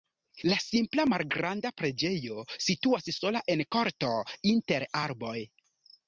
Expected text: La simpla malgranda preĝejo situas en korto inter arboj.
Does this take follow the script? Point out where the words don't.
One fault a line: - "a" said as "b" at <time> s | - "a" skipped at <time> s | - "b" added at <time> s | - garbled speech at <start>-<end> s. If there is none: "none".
- "sola" added at 3.2 s